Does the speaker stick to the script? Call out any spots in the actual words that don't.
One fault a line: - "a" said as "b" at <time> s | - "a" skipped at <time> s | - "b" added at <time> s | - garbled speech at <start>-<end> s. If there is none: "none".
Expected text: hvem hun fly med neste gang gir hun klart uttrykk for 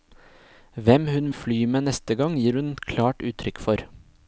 none